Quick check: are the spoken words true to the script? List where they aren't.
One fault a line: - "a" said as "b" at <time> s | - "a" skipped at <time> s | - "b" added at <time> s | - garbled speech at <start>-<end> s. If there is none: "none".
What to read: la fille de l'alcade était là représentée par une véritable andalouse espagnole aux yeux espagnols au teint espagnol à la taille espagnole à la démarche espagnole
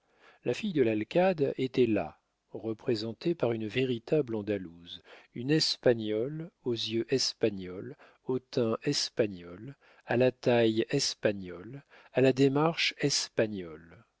- "une" added at 5.3 s